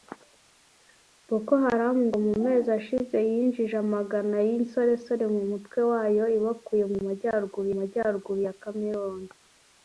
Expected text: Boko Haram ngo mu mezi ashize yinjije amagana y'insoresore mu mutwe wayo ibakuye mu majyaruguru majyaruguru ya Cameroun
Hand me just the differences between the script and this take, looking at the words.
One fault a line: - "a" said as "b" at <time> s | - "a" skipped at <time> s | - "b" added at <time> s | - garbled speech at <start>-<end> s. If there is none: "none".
none